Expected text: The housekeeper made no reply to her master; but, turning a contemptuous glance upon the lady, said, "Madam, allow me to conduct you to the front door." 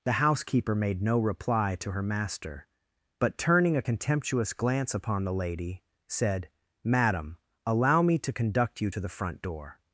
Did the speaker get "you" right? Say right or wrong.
right